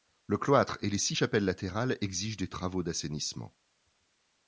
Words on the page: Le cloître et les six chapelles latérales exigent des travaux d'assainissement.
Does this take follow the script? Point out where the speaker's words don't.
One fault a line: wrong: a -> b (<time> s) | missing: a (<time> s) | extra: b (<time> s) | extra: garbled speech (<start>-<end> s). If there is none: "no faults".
no faults